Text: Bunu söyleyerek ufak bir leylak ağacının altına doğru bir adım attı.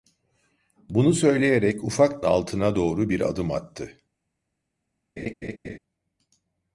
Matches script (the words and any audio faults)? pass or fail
fail